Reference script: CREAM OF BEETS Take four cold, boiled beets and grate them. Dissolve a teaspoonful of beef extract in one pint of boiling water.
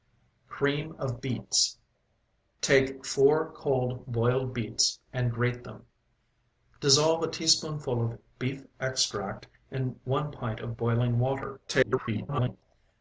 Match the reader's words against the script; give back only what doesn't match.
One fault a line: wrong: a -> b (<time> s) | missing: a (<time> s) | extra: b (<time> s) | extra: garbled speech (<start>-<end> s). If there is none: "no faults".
extra: garbled speech (11.7-12.6 s)